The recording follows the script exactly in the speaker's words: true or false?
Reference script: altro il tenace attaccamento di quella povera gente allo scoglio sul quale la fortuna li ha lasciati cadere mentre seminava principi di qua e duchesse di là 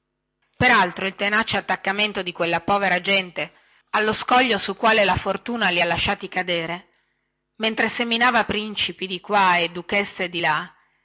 true